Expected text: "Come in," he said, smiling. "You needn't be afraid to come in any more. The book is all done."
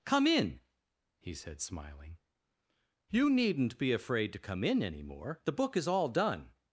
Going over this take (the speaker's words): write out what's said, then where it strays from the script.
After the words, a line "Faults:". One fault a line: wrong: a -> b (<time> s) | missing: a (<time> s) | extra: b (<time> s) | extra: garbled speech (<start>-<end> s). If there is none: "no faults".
"Come in," he said, smiling. "You needn't be afraid to come in any more. The book is all done."
Faults:
no faults